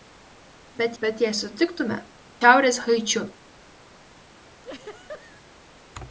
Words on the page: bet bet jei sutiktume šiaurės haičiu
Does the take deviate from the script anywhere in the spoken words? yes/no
no